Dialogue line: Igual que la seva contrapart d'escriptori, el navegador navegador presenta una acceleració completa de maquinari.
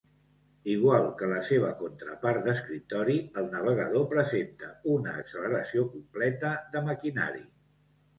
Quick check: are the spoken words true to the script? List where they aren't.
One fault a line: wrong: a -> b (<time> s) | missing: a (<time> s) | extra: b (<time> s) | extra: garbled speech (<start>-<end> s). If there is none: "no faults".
missing: navegador (4.1 s)